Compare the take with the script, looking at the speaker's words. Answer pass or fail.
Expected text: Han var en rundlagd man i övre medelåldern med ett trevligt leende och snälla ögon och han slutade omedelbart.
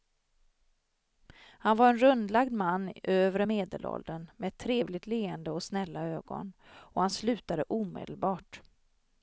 pass